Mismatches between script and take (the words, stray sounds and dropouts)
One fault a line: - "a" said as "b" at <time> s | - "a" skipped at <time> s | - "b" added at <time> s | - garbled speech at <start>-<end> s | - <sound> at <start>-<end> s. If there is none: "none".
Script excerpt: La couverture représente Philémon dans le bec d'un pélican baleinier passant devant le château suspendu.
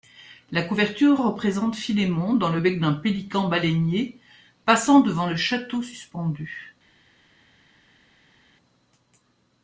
none